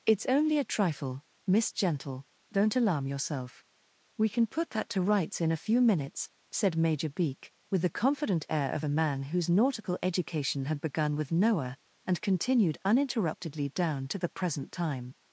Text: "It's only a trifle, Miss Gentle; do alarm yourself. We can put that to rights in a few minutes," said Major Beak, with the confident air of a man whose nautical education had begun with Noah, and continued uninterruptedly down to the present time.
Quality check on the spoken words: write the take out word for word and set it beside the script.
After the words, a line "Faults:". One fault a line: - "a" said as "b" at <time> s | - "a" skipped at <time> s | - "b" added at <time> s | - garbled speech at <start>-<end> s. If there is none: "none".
"It's only a trifle, Miss Gentle; don't alarm yourself. We can put that to rights in a few minutes," said Major Beak, with the confident air of a man whose nautical education had begun with Noah, and continued uninterruptedly down to the present time.
Faults:
- "do" said as "don't" at 2.5 s